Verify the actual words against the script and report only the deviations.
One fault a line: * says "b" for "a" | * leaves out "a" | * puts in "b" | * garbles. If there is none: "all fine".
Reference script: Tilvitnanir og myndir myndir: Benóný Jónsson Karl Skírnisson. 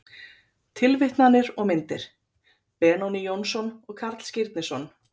* leaves out "myndir"
* puts in "og"